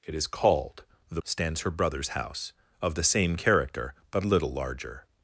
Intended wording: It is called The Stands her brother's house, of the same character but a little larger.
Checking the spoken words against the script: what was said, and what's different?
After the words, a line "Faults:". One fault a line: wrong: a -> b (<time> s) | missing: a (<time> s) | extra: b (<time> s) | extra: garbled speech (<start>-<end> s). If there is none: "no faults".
It is called The Stands her brother's house, of the same character but a little larger.
Faults:
no faults